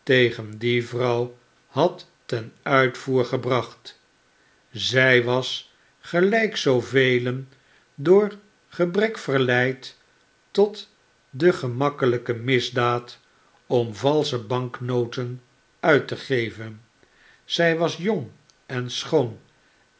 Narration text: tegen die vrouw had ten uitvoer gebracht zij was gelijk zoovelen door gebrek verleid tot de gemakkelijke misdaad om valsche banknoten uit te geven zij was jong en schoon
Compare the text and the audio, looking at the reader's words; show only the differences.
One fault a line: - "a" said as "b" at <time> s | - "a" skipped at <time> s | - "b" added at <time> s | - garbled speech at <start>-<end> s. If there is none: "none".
none